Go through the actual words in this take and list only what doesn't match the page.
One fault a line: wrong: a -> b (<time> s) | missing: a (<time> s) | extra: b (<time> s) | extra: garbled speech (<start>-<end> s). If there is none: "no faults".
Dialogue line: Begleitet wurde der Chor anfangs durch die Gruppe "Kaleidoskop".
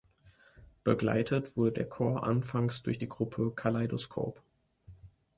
no faults